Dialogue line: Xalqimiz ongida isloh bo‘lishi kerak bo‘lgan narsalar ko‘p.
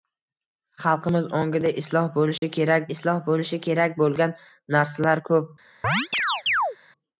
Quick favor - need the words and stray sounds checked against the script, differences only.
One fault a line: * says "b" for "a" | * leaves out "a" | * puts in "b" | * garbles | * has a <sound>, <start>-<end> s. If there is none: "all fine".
* has a dropout, 2.4-2.4 s
* puts in "isloh bo‘lishi kerak"
* has a chirp, 5.8-6.8 s